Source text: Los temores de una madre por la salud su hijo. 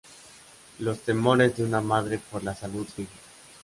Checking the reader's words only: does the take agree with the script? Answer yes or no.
yes